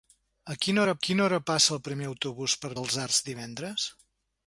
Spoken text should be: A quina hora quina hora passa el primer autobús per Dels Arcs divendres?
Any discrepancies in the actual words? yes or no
no